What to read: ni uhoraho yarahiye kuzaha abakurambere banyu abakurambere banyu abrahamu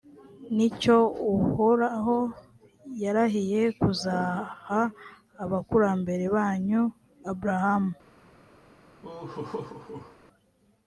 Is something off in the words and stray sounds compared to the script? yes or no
yes